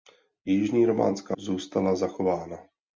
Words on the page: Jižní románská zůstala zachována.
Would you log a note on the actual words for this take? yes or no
no